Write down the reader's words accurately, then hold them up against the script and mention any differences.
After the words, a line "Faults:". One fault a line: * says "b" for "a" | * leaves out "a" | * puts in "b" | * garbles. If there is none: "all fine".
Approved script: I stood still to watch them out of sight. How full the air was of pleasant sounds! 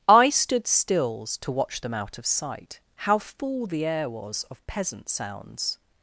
I stood stills to watch them out of sight. How full the air was of peasant sounds!
Faults:
* says "stills" for "still"
* says "peasant" for "pleasant"